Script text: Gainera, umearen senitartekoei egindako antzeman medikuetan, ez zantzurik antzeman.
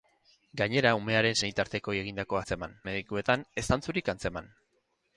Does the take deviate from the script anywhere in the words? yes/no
no